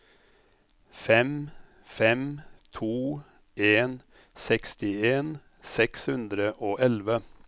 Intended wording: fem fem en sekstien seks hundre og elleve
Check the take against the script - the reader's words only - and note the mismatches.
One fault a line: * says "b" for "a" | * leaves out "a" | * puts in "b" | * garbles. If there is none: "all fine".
* puts in "to"